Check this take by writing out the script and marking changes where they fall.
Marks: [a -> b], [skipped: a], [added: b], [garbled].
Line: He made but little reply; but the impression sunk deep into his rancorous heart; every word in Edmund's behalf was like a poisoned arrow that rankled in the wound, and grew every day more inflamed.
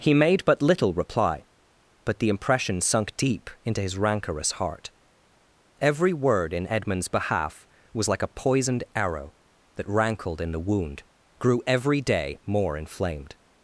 He made but little reply; but the impression sunk deep into his rancorous heart; every word in Edmund's behalf was like a poisoned arrow that rankled in the wound, [skipped: and] grew every day more inflamed.